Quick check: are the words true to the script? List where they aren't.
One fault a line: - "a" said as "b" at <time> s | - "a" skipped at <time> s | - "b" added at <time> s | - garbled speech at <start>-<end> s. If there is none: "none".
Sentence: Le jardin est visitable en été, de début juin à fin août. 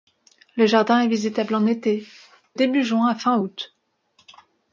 - "de" skipped at 2.0 s